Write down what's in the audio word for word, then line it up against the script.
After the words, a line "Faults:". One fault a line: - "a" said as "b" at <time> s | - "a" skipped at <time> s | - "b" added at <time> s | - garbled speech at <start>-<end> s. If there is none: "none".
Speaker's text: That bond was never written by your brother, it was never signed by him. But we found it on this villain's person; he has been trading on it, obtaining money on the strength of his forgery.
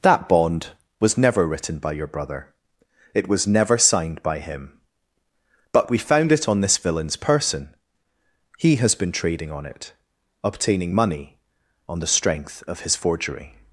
That bond was never written by your brother, it was never signed by him. But we found it on this villain's person; he has been trading on it, obtaining money on the strength of his forgery.
Faults:
none